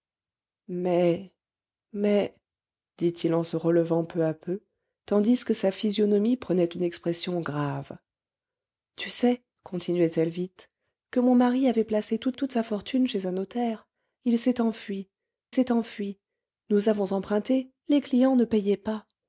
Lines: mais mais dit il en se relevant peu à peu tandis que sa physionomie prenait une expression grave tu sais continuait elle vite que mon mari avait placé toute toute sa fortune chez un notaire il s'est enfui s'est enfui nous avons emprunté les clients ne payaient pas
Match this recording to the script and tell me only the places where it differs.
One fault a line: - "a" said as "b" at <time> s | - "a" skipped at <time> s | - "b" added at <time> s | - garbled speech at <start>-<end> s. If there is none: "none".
none